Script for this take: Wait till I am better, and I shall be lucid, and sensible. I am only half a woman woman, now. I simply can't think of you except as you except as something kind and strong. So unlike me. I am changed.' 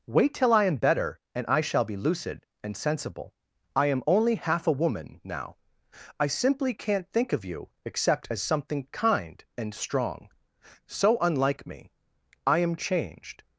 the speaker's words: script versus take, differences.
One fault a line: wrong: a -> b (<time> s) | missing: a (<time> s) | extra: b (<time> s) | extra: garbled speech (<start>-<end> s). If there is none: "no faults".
missing: woman (5.2 s)
missing: you except as (8.4 s)